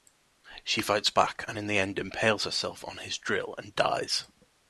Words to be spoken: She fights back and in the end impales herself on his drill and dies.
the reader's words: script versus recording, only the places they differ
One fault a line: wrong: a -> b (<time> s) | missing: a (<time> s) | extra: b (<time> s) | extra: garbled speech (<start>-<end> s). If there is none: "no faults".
no faults